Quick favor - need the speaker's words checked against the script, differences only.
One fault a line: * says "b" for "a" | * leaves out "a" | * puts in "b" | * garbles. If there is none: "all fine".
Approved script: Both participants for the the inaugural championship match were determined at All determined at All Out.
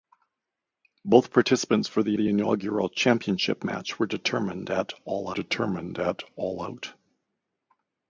all fine